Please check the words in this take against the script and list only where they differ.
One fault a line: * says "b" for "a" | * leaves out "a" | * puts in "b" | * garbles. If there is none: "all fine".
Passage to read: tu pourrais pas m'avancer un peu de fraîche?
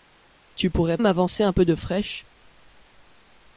* leaves out "pas"